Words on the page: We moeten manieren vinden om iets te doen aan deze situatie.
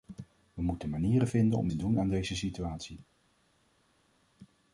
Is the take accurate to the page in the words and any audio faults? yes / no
no